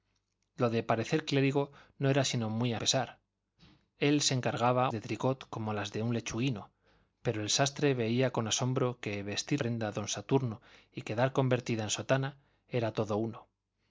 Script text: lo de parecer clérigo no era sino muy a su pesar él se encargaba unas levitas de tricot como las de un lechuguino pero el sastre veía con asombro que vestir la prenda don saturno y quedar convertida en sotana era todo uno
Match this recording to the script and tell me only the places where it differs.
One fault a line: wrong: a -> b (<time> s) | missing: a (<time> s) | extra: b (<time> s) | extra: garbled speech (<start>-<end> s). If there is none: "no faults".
missing: su (2.8 s)
missing: unas levitas (4.9 s)
missing: la (9.6 s)